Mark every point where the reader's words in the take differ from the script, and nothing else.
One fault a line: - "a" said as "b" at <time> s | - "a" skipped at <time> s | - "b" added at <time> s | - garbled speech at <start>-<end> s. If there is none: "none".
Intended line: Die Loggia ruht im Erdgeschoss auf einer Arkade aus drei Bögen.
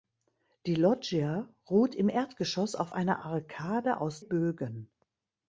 - "drei" skipped at 4.2 s